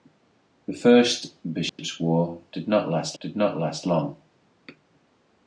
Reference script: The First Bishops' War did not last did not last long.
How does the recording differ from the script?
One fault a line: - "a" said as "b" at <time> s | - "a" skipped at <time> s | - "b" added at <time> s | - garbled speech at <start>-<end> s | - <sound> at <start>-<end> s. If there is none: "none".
- dropout at 1.7-1.8 s